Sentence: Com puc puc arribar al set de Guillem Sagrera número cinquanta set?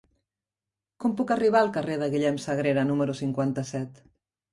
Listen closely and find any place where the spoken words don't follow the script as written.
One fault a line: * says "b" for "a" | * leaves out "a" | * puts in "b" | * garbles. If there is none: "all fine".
* leaves out "puc"
* says "carrer" for "set"